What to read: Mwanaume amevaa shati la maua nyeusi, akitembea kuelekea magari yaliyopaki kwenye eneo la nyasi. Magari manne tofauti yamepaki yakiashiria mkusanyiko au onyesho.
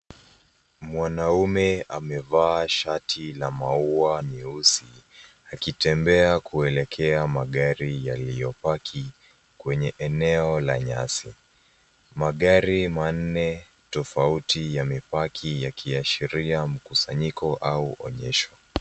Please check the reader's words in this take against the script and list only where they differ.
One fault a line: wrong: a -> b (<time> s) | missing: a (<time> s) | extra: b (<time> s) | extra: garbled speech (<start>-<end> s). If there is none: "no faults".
no faults